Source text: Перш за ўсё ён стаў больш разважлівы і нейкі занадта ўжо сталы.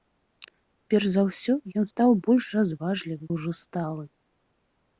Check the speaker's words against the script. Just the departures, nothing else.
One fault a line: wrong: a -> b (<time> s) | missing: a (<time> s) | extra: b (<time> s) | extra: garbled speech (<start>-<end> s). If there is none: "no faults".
missing: і нейкі занадта (3.3 s)